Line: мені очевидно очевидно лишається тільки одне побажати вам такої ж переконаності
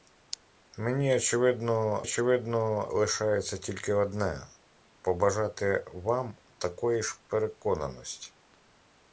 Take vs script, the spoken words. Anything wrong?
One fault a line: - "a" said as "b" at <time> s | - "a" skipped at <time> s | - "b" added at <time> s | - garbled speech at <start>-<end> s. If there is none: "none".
none